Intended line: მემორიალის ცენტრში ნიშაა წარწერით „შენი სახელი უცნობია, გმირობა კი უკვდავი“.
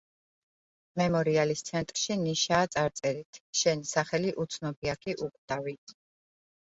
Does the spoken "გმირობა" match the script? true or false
false